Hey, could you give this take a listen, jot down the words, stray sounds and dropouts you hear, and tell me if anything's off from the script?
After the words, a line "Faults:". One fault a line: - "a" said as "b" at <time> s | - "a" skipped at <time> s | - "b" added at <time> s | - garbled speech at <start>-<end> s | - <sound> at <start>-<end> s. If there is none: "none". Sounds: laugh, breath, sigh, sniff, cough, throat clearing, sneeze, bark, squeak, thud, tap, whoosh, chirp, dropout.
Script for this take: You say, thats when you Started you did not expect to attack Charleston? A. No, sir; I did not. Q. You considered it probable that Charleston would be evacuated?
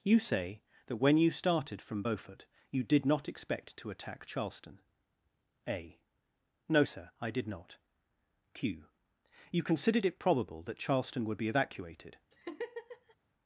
You say, that when you Started from Beaufort you did not expect to attack Charleston? A. No, sir; I did not. Q. You considered it probable that Charleston would be evacuated?
Faults:
- "thats" said as "that" at 0.9 s
- "from Beaufort" added at 1.8 s
- laugh at 12.3-13.2 s